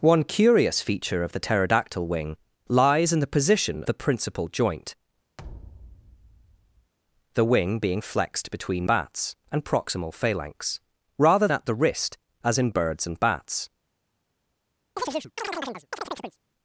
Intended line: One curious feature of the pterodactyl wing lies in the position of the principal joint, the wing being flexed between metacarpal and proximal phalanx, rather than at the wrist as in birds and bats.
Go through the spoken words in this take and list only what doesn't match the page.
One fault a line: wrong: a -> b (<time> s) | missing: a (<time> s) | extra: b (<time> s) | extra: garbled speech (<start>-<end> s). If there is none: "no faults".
missing: of (3.8 s)
wrong: metacarpal -> bats (8.8 s)
missing: than (11.5 s)